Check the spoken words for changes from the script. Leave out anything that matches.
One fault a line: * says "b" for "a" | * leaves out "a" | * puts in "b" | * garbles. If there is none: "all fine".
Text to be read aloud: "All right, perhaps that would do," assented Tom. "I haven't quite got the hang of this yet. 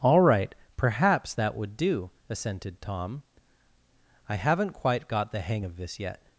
all fine